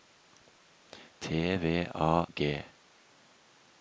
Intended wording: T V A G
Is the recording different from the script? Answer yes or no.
no